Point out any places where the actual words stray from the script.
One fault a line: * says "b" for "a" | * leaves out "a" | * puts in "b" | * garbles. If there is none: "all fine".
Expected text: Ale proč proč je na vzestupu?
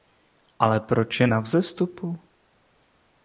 * leaves out "proč"